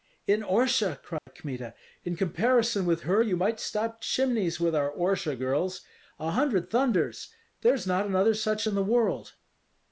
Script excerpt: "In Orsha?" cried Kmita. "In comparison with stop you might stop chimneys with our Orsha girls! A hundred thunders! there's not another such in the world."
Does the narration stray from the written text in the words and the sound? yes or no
yes